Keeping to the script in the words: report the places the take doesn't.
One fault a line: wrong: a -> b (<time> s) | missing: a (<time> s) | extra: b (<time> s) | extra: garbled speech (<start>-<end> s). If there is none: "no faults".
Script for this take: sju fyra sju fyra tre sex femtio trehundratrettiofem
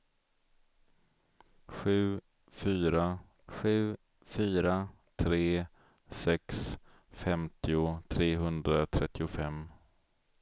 no faults